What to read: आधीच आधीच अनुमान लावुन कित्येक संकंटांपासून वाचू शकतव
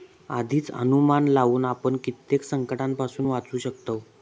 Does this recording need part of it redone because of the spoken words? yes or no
yes